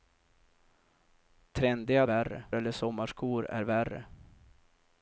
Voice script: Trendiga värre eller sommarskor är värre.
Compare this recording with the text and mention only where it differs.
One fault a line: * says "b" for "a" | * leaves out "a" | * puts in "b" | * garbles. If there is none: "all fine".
all fine